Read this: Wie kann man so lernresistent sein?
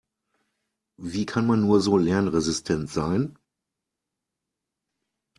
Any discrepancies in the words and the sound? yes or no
yes